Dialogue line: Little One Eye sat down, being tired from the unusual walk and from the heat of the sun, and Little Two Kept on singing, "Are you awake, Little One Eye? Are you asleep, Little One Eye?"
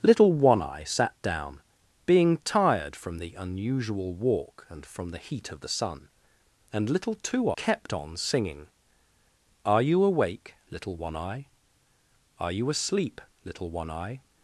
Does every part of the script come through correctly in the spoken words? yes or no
yes